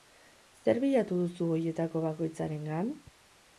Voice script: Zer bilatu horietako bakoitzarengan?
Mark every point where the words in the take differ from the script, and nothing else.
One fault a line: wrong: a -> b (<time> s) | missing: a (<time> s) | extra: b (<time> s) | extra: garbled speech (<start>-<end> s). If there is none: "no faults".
extra: duzu (1.2 s)